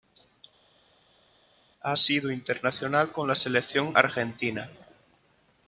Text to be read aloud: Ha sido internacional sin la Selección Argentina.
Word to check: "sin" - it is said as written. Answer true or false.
false